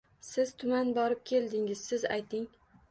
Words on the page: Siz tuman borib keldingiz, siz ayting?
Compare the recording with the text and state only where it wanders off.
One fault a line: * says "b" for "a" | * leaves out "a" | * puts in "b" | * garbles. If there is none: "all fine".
all fine